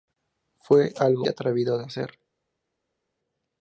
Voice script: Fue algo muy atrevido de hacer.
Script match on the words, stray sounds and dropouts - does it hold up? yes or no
no